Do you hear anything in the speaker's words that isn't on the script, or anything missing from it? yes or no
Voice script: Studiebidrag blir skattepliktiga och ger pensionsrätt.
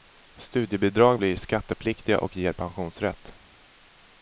no